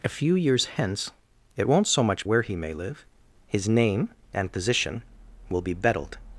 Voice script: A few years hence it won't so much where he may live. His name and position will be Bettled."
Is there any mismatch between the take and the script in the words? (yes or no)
no